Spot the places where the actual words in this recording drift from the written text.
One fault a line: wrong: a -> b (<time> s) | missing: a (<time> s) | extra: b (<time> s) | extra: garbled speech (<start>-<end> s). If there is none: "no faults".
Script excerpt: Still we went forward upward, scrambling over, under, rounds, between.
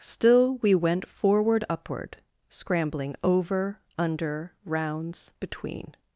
no faults